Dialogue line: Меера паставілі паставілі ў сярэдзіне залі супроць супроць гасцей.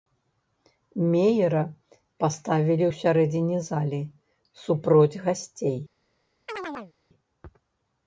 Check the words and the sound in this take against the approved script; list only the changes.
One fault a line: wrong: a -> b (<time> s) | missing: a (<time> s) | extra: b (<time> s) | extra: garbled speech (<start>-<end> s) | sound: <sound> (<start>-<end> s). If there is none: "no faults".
missing: паставілі (2.8 s)
missing: супроць (5.2 s)
sound: chirp (6.5-6.9 s)